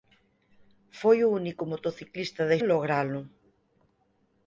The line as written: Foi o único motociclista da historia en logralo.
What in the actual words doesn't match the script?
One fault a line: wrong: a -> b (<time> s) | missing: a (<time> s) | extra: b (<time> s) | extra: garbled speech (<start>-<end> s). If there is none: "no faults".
missing: historia (2.6 s)